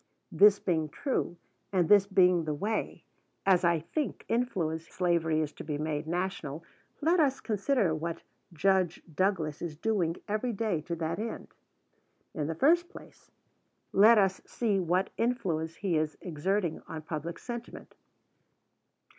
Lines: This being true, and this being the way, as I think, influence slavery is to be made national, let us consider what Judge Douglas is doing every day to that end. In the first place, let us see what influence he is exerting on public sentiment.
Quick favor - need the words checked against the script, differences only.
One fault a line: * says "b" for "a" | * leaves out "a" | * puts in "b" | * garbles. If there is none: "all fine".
all fine